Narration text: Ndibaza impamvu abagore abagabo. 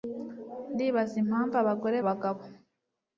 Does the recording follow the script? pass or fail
pass